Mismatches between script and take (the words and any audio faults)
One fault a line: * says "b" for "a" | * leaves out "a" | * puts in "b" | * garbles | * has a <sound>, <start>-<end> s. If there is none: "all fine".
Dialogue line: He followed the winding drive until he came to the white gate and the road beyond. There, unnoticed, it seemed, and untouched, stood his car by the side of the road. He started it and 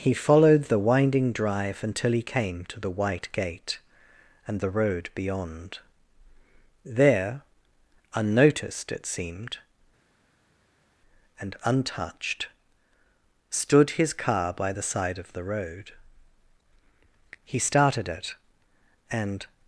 all fine